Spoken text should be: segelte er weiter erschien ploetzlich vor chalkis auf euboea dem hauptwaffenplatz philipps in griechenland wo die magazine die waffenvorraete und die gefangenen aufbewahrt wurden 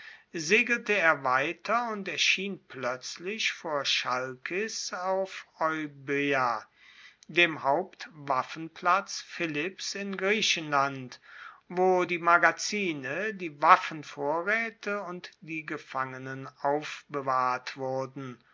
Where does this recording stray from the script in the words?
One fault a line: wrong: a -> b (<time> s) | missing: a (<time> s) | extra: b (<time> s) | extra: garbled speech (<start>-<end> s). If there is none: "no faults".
extra: und (1.9 s)